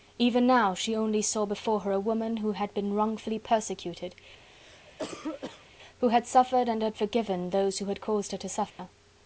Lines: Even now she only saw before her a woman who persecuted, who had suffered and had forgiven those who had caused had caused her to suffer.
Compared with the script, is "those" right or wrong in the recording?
right